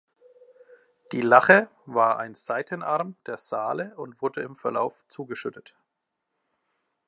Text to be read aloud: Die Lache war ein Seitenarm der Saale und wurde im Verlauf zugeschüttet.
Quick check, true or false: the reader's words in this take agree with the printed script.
true